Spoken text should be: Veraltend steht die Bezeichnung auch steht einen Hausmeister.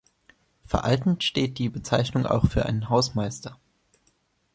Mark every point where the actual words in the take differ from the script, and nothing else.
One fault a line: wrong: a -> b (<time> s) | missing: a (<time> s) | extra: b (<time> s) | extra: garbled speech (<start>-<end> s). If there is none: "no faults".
wrong: steht -> für (2.5 s)